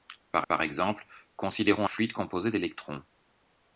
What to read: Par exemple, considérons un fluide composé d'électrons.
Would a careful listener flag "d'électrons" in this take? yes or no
no